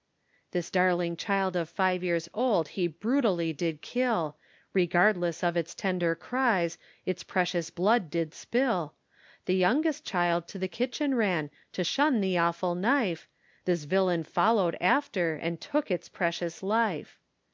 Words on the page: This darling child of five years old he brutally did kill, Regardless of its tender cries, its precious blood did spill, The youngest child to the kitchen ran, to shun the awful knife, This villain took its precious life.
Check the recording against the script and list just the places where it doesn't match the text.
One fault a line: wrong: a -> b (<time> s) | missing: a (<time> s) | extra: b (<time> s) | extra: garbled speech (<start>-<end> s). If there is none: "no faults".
extra: followed after and (14.2 s)